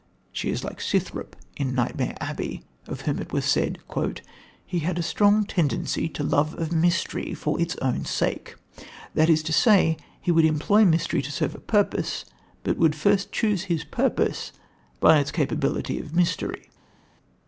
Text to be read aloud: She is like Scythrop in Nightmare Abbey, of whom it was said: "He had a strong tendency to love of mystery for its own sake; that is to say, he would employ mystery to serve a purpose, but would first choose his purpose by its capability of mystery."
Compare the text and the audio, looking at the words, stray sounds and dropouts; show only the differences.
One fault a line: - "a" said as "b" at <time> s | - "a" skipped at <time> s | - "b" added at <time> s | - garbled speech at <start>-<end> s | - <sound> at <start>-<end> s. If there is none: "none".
none